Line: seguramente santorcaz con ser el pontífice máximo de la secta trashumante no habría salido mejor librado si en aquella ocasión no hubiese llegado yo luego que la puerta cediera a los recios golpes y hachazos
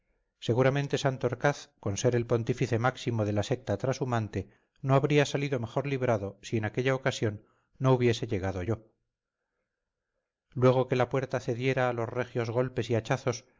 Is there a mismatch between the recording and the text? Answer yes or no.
no